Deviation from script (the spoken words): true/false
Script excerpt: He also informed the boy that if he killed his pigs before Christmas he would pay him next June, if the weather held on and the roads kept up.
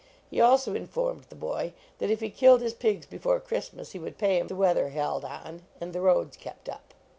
true